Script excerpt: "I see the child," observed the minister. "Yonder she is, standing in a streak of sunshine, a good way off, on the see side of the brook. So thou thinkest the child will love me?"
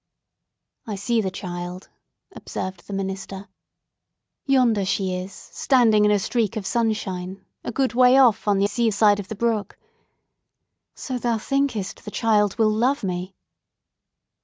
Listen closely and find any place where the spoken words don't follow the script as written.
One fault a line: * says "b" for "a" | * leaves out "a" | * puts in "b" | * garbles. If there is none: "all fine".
all fine